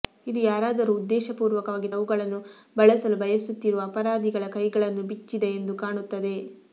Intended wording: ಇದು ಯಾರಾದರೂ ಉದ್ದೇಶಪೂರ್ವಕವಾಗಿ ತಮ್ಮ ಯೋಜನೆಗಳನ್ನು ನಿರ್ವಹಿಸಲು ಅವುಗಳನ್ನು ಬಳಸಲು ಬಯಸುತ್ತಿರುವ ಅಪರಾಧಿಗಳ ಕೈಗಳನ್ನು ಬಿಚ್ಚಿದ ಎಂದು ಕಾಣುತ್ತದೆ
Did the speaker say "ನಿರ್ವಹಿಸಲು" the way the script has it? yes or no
no